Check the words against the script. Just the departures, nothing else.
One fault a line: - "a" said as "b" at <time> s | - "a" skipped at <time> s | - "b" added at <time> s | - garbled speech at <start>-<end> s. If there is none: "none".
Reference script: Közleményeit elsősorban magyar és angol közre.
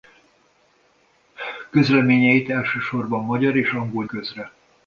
none